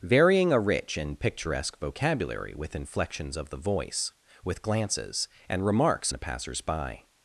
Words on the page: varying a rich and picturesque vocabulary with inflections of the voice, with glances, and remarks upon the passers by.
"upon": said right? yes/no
no